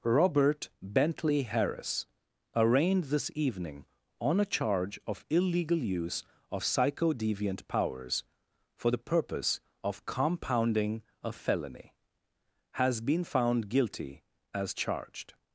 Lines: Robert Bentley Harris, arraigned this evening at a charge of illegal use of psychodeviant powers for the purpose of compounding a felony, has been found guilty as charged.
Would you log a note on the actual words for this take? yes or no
yes